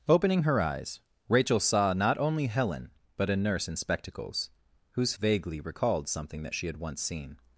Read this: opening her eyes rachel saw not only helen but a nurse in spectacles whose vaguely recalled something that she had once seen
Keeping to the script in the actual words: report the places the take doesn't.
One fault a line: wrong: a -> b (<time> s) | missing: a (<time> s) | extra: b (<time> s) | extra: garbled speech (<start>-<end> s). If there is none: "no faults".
no faults